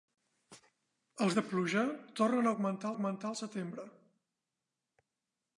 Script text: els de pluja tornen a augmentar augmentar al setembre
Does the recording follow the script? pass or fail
pass